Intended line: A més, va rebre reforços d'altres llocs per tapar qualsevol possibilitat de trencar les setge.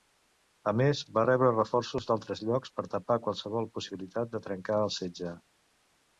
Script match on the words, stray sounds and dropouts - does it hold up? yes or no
no